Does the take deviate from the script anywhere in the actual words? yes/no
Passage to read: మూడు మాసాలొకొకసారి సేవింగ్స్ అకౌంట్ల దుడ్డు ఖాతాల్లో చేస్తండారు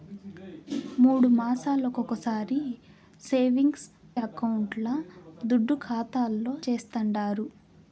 no